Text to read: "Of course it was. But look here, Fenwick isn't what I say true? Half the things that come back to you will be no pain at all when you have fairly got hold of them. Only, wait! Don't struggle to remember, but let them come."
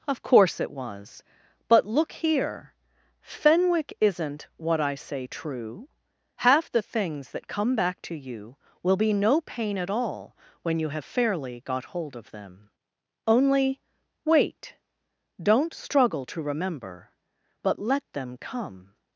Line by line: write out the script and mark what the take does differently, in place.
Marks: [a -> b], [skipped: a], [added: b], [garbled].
"Of course it was. But look here, Fenwick isn't what I say true? Half the things that come back to you will be no pain at all when you have fairly got hold of them. Only, wait! Don't struggle to remember, but let them come."